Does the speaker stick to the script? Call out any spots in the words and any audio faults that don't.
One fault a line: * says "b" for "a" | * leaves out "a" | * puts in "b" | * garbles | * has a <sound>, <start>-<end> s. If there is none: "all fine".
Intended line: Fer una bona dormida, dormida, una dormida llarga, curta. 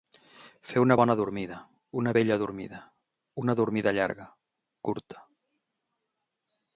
* puts in "una bella"